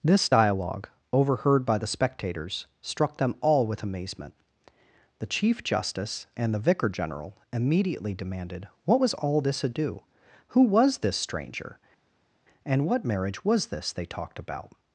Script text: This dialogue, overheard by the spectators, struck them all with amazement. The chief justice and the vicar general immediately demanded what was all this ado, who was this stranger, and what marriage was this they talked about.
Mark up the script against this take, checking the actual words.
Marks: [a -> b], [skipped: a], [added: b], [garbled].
This dialogue, overheard by the spectators, struck them all with amazement. The chief justice and the vicar general immediately demanded what was all this ado, who was this stranger, and what marriage was this they talked about.